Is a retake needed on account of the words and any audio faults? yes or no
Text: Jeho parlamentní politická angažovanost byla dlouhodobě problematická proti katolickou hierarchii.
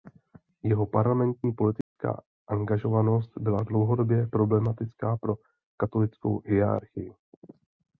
yes